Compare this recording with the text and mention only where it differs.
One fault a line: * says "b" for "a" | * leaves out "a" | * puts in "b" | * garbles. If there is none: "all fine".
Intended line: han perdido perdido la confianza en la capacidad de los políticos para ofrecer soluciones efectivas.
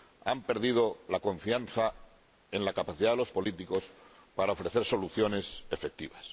* leaves out "perdido"